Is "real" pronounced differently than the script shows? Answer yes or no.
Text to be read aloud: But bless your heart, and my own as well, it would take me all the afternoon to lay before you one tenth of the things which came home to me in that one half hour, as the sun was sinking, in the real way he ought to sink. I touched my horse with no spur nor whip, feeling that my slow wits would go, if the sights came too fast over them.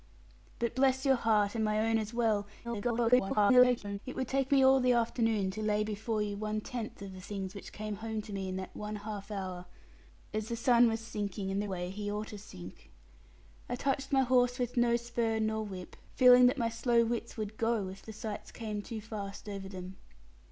yes